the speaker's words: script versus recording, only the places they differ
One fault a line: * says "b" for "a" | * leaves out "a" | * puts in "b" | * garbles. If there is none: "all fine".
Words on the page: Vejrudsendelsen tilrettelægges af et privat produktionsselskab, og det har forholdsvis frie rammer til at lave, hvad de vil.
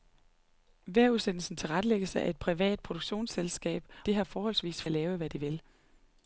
* leaves out "og"
* leaves out "frie rammer til"